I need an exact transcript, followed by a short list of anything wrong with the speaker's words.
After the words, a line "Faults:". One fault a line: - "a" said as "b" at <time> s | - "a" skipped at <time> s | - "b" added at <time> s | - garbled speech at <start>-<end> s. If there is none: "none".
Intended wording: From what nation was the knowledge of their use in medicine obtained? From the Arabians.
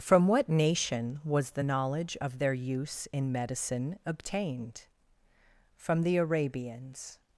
From what nation was the knowledge of their use in medicine obtained? From the Arabians.
Faults:
none